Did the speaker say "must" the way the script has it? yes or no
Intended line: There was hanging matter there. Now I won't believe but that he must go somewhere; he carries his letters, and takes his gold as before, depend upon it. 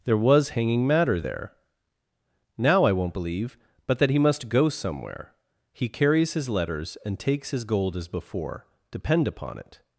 yes